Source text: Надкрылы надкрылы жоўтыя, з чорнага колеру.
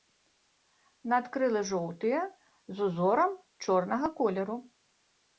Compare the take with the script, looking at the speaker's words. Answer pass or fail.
fail